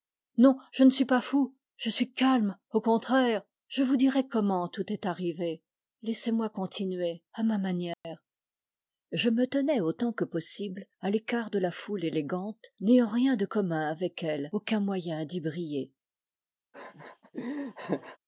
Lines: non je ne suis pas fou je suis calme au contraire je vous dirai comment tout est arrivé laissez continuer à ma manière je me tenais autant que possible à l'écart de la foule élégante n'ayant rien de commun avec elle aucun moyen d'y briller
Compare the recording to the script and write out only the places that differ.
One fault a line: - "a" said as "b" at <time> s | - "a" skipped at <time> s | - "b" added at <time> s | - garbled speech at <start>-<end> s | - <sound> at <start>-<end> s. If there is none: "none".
- "moi" added at 6.3 s
- dropout at 7.9-8.0 s
- laugh at 16.7-18.2 s